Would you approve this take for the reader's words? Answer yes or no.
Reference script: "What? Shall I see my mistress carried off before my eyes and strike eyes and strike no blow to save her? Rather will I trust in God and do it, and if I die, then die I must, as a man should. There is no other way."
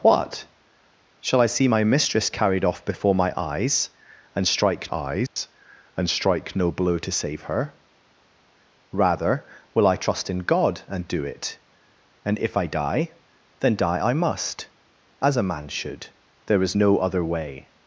yes